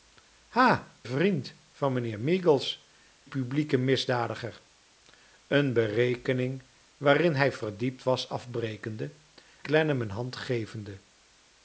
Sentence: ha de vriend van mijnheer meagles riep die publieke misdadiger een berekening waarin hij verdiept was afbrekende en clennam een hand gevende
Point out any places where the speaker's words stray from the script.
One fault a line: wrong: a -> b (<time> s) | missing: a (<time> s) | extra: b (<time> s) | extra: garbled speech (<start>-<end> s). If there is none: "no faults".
missing: de (1.0 s)
missing: riep die (2.9 s)
missing: en (9.1 s)